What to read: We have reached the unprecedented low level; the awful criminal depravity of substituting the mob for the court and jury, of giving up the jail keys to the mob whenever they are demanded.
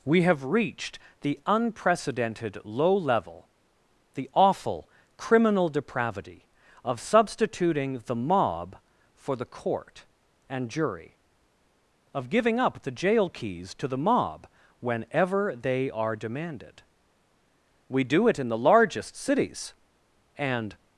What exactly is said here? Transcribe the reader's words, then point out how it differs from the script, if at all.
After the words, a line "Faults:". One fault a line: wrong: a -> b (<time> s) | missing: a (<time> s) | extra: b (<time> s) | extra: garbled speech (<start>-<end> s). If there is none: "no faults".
We have reached the unprecedented low level; the awful criminal depravity of substituting the mob for the court and jury, of giving up the jail keys to the mob whenever they are demanded. We do it in the largest cities and
Faults:
extra: We do it in the largest cities and (17.9 s)